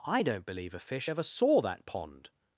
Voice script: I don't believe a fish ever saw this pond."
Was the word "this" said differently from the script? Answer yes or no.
yes